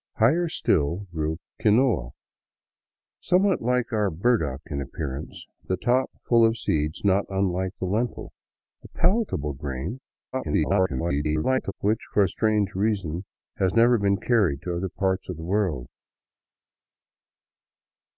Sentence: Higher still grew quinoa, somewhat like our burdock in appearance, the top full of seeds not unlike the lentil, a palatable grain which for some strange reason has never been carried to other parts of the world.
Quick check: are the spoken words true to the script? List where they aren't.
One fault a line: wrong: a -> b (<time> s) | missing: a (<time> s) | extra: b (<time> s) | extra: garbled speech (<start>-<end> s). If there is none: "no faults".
extra: garbled speech (10.3-11.7 s)
missing: some (12.3 s)